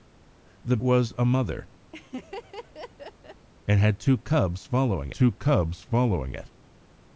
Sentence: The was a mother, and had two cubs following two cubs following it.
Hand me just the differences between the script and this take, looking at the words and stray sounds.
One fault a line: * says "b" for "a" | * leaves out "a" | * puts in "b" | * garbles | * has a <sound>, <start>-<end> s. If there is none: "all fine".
* has a laugh, 1.9-3.5 s